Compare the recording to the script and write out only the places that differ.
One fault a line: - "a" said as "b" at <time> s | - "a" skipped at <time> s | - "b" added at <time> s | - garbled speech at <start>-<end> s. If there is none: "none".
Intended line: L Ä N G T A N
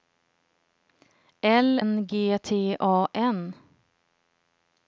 - "Ä" skipped at 1.7 s